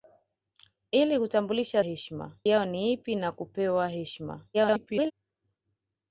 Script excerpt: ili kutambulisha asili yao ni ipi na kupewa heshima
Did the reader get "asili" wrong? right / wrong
wrong